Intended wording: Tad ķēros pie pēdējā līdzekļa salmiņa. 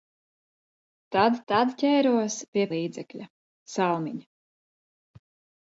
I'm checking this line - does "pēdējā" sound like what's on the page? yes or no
no